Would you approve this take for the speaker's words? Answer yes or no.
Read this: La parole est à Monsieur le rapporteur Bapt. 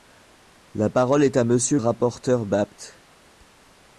no